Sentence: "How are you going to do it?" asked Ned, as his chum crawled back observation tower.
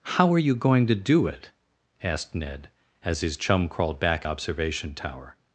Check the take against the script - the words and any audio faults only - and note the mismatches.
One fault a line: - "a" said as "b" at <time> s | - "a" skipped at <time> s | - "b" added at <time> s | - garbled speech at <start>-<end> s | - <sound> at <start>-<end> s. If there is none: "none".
none